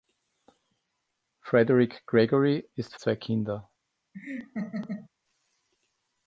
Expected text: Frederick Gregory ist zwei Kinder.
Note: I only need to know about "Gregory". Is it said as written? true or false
true